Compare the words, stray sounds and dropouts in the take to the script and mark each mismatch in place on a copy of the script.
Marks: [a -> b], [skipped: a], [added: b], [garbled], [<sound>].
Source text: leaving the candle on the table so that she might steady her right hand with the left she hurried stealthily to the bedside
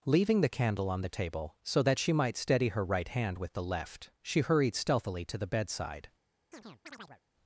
leaving the candle on the table so that she might steady her right hand with the left she hurried stealthily to the bedside [chirp]